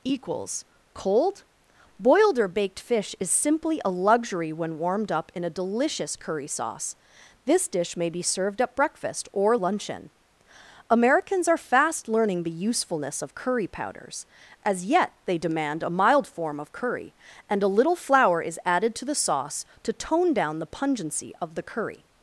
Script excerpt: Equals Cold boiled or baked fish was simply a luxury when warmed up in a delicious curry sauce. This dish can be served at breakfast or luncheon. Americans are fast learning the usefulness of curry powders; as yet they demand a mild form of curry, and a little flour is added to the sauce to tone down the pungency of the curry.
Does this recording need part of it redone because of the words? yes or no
yes